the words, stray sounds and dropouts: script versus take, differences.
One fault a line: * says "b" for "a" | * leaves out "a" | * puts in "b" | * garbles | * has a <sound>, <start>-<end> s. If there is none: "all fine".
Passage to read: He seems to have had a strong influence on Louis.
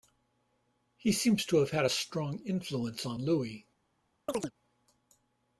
* has a chirp, 4.3-4.5 s